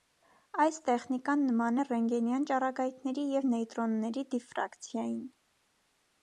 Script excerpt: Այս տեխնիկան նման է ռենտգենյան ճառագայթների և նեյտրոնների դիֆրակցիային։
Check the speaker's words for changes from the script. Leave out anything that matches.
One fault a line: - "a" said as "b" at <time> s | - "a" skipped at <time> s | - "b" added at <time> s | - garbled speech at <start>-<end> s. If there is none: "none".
none